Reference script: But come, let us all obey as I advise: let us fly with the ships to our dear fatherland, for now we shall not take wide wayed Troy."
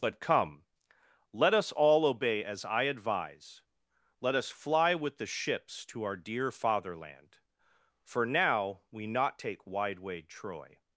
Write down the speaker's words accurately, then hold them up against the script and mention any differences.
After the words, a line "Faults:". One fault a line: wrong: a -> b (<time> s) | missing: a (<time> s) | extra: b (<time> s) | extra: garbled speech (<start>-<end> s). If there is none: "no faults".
But come, let us all obey as I advise: let us fly with the ships to our dear fatherland, for now we not take wide wayed Troy."
Faults:
missing: shall (9.1 s)